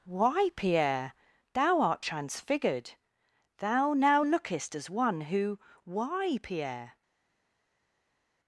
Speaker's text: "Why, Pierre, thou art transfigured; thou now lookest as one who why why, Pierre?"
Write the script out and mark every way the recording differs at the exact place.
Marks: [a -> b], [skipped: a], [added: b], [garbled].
"Why, Pierre, thou art transfigured; thou now lookest as one who why [skipped: why,] Pierre?"